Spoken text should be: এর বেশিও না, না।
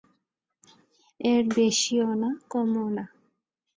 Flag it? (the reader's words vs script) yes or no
yes